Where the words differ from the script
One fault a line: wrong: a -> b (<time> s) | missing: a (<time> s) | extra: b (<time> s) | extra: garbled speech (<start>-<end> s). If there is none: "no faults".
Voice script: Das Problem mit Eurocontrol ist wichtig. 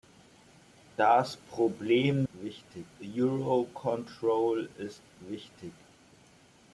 wrong: mit -> wichtig (2.3 s)